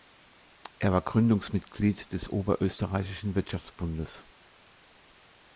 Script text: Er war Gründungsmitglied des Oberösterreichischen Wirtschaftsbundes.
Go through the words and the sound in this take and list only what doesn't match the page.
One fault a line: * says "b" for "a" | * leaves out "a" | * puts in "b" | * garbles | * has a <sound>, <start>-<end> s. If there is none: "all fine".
all fine